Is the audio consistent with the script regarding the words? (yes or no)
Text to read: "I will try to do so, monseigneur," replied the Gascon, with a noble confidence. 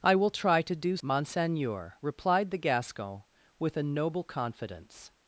no